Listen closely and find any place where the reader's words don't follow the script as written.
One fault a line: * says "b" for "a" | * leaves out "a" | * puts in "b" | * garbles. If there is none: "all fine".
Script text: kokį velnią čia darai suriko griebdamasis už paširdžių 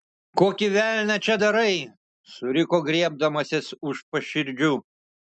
all fine